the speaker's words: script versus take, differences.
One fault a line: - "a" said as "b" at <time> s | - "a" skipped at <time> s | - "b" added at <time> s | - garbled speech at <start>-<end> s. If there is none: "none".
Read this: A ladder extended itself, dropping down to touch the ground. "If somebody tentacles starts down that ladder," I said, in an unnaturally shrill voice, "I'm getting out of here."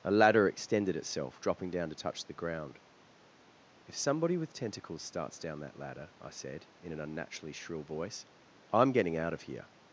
- "with" added at 4.4 s